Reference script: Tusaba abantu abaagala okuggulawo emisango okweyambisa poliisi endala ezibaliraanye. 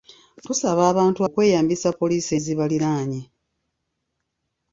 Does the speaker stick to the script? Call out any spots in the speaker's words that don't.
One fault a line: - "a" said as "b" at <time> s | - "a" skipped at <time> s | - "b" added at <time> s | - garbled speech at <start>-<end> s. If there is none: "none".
- "abaagala okuggulawo emisango" skipped at 1.2 s
- "endala" skipped at 2.3 s